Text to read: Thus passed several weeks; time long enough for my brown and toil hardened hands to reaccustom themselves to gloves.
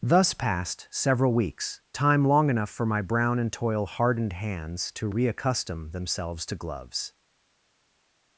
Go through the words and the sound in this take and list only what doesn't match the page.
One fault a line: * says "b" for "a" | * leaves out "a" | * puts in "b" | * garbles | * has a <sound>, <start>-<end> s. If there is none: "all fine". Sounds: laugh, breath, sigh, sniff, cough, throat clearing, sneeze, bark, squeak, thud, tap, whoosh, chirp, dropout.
all fine